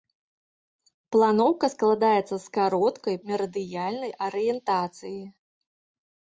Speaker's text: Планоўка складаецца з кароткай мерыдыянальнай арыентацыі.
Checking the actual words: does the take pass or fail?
pass